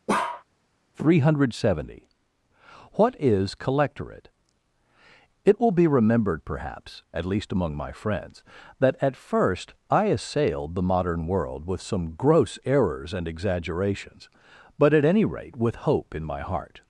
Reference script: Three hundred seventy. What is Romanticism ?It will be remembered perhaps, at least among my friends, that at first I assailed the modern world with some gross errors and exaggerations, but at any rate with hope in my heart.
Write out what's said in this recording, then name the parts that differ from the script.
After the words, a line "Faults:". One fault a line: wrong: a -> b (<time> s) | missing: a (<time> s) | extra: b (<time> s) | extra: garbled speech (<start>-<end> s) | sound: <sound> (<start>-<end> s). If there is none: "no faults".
Three hundred seventy. What is Collectorate ?It will be remembered perhaps, at least among my friends, that at first I assailed the modern world with some gross errors and exaggerations, but at any rate with hope in my heart.
Faults:
sound: bark (0.1-0.4 s)
wrong: Romanticism -> Collectorate (3.5 s)